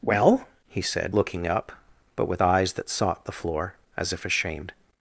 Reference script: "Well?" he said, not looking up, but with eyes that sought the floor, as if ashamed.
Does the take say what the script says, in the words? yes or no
no